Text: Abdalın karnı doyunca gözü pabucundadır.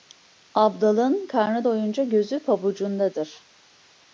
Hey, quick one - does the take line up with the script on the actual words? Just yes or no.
yes